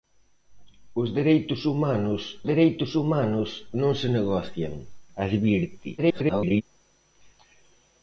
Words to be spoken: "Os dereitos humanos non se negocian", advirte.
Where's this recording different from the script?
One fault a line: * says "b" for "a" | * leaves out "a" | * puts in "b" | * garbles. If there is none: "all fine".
* puts in "dereitos humanos"
* garbles